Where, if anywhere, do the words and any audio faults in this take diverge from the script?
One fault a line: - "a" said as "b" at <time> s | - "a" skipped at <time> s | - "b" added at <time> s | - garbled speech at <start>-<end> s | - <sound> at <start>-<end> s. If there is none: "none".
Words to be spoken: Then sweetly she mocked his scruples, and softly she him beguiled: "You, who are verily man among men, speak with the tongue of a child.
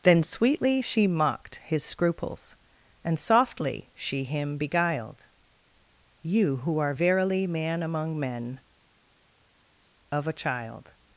- "speak with the tongue" skipped at 8.6 s